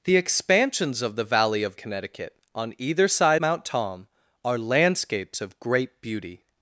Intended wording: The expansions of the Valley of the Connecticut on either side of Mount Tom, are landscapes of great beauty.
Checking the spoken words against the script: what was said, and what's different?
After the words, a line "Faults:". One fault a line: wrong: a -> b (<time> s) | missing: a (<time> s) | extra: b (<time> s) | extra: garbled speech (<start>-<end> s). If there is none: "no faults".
The expansions of the Valley of Connecticut on either side Mount Tom, are landscapes of great beauty.
Faults:
missing: the (1.8 s)
missing: of (3.4 s)